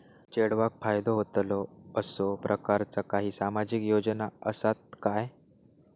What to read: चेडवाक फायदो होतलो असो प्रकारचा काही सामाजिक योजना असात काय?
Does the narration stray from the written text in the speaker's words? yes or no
no